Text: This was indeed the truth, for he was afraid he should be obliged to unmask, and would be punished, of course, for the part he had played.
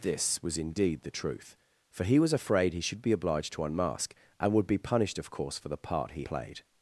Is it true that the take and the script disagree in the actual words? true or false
true